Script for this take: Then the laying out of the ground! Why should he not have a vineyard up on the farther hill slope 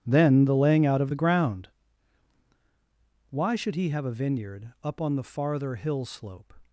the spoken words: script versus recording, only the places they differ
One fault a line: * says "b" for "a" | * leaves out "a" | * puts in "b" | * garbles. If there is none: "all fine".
* leaves out "not"